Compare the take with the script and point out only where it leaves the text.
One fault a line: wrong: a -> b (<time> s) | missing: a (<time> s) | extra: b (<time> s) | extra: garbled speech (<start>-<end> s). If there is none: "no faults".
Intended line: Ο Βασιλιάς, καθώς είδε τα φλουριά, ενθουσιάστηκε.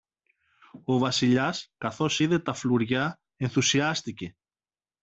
no faults